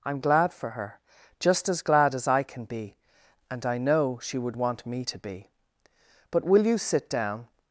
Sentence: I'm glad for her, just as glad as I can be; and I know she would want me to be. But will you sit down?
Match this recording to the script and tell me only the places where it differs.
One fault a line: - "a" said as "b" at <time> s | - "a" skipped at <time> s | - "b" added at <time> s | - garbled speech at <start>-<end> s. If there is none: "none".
none